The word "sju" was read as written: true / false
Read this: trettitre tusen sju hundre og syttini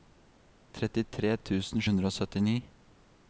false